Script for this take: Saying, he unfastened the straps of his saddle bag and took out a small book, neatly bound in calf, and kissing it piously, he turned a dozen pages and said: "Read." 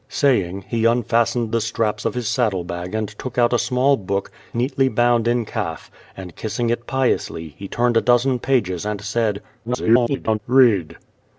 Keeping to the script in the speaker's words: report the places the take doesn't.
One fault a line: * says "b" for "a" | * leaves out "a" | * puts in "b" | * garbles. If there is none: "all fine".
* garbles